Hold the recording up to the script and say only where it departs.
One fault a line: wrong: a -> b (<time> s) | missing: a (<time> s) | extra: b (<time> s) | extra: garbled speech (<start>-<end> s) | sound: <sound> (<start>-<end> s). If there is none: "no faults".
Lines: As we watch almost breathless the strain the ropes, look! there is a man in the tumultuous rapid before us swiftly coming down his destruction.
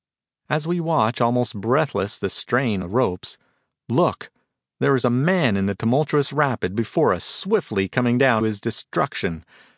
no faults